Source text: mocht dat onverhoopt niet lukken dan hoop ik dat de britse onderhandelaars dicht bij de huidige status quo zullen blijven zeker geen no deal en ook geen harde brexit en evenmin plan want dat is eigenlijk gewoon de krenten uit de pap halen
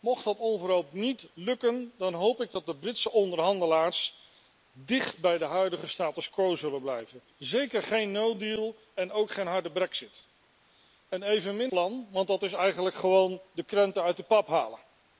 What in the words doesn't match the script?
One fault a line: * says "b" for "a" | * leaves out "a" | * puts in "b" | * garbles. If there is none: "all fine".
all fine